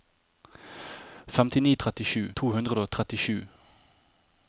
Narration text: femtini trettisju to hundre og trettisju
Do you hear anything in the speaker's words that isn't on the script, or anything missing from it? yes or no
no